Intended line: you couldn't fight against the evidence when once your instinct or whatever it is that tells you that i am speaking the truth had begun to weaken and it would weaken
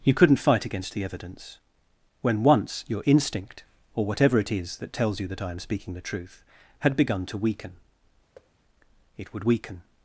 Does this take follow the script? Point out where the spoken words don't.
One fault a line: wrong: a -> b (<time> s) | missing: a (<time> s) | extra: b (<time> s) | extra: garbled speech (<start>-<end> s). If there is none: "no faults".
missing: and (7.7 s)